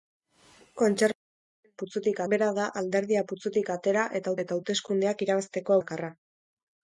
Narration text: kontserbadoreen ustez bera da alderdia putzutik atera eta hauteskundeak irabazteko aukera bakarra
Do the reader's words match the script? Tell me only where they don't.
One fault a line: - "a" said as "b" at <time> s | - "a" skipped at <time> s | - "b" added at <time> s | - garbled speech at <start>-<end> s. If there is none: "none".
- "ustez" said as "putzutik" at 1.8 s
- "eta" added at 4.4 s
- "aukera" skipped at 5.8 s